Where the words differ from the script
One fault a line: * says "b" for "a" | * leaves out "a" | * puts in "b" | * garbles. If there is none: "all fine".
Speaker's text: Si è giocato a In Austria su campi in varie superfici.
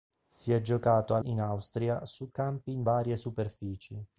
all fine